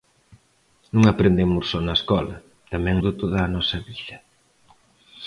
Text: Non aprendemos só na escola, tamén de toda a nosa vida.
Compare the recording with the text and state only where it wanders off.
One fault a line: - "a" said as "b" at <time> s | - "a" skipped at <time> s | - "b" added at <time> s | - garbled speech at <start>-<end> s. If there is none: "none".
none